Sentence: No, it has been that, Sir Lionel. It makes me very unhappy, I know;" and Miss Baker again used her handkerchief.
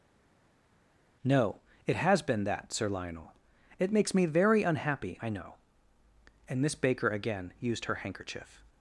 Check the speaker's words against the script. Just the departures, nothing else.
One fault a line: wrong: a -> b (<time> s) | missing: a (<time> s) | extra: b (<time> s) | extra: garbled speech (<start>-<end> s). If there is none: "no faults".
no faults